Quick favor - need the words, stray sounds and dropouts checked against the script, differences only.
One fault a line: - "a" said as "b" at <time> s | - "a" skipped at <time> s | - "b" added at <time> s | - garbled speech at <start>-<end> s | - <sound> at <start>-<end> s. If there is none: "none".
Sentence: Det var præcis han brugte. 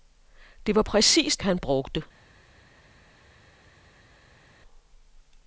none